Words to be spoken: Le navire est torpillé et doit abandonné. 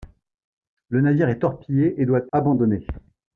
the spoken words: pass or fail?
pass